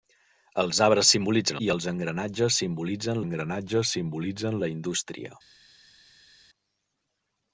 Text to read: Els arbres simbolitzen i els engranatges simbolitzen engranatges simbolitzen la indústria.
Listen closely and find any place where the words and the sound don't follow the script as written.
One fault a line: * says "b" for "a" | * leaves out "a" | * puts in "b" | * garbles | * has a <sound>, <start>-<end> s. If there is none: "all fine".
all fine